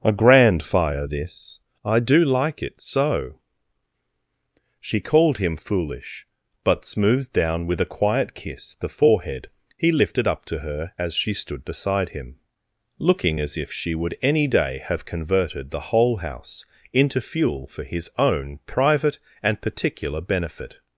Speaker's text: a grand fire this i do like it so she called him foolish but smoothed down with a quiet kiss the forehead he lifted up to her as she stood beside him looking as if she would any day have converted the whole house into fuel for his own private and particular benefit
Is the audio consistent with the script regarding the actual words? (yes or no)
yes